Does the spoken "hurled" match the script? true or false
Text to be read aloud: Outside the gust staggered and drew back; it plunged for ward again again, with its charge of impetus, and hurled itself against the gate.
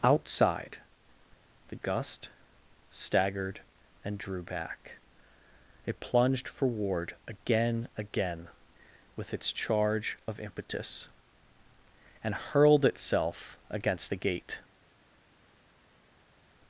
true